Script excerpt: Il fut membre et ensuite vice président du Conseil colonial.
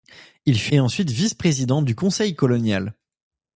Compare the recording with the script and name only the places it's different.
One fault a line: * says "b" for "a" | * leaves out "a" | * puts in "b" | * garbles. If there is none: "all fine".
* leaves out "membre"